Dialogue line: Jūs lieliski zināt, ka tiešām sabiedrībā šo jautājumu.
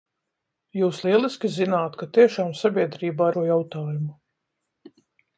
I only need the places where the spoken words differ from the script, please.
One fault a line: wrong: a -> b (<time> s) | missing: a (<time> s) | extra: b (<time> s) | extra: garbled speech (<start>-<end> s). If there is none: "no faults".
no faults